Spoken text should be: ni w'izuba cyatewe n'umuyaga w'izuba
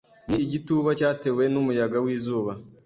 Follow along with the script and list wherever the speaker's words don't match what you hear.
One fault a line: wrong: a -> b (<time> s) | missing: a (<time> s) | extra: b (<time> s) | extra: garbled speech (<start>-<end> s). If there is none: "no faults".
wrong: w'izuba -> igituba (0.5 s)